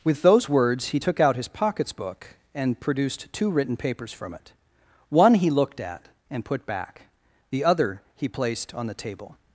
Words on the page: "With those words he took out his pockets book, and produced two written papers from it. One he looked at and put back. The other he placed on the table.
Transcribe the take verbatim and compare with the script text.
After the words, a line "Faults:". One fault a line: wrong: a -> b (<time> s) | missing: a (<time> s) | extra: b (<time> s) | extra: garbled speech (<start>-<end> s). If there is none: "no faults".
"With those words he took out his pockets book, and produced two written papers from it. One he looked at and put back. The other he placed on the table.
Faults:
no faults